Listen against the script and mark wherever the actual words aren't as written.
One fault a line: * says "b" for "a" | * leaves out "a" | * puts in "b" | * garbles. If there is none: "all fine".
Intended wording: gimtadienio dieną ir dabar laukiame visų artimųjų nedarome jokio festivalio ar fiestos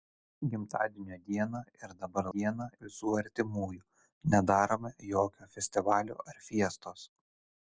* says "dieną" for "laukiame"